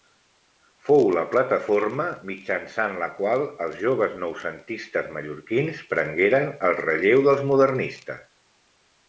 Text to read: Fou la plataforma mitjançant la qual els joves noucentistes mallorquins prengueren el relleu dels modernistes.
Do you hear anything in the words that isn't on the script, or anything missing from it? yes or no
no